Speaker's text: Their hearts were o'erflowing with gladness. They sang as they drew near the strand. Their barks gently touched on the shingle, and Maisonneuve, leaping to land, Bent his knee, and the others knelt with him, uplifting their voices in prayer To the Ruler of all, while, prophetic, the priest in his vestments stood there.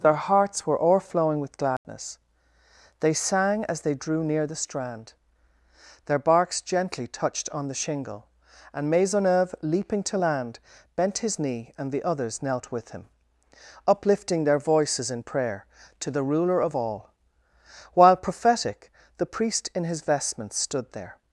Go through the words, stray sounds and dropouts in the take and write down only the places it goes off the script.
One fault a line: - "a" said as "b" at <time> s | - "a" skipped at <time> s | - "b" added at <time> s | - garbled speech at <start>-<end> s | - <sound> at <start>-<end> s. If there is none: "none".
- dropout at 1.8-1.8 s